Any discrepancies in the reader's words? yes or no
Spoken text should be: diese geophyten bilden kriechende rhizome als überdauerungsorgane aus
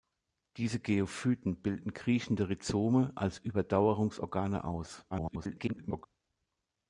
yes